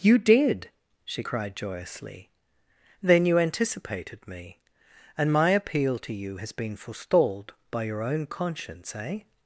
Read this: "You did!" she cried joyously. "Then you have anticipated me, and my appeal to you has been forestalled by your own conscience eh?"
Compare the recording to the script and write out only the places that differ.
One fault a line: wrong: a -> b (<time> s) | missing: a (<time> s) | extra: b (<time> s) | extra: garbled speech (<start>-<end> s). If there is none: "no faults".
missing: have (3.4 s)